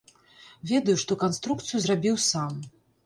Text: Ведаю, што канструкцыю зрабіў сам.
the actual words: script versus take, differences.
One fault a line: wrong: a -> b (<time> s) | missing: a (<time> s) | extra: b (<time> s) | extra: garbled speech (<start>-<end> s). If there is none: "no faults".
no faults